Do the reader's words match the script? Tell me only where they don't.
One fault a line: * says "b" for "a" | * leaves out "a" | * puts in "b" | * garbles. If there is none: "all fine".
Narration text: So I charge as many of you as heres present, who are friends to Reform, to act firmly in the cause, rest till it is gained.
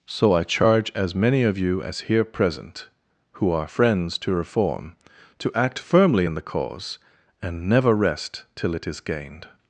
* says "here" for "heres"
* puts in "and never"